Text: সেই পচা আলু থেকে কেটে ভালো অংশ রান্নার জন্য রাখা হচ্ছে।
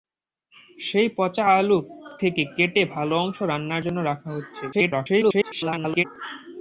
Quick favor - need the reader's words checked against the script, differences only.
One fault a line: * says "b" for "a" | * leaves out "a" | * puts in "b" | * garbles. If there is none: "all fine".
* garbles